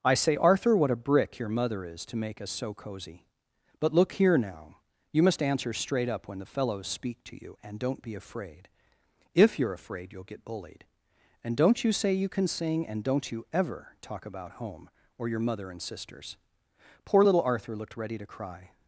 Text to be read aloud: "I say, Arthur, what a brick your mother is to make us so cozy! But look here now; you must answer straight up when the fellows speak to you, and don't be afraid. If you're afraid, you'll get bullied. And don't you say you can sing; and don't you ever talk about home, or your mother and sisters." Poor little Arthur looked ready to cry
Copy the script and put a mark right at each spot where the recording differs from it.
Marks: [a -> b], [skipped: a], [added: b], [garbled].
"I say, Arthur, what a brick your mother is to make us so cozy! But look here now; you must answer straight up when the fellows speak to you, and don't be afraid. If you're afraid, you'll get bullied. And don't you say you can sing; and don't you ever talk about home, or your mother and sisters." Poor little Arthur looked ready to cry